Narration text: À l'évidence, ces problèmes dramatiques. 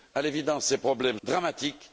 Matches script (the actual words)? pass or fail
pass